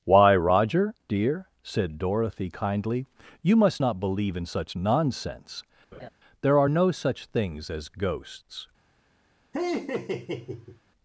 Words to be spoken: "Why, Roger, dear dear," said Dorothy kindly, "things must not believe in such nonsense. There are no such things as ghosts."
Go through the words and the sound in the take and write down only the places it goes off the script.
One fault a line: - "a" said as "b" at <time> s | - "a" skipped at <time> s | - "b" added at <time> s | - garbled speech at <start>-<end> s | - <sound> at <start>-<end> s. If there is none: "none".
- "dear" skipped at 1.5 s
- "things" said as "you" at 3.4 s
- laugh at 5.9-6.1 s
- laugh at 9.5-10.8 s